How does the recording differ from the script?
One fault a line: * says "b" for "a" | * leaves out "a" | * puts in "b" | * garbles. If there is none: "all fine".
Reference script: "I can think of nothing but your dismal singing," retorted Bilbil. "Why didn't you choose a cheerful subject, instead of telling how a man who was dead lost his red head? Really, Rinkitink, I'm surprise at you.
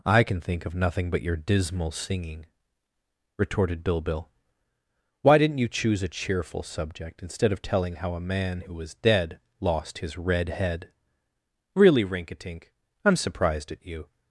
* says "surprised" for "surprise"